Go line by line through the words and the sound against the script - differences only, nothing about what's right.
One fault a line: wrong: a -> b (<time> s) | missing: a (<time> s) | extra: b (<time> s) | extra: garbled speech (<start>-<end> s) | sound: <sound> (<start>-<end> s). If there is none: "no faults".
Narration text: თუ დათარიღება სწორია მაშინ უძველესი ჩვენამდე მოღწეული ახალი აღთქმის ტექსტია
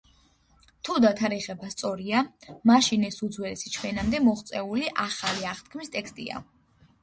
extra: ეს (3.1 s)